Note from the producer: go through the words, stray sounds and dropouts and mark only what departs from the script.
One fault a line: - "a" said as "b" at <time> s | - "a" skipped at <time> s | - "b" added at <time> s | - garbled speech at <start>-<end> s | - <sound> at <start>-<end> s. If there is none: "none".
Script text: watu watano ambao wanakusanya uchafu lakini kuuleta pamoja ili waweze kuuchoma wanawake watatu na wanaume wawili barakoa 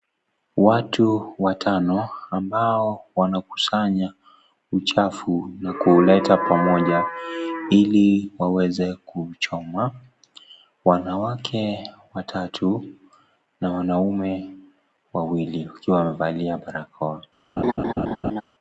- "lakini" said as "na" at 5.6 s
- "wakiwa wamevalia" added at 15.7 s
- laugh at 17.6-18.4 s